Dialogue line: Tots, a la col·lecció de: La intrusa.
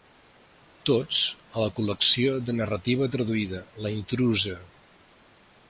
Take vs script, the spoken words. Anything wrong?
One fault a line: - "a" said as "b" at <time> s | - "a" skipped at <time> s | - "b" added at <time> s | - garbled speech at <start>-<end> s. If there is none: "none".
- "narrativa traduïda" added at 2.6 s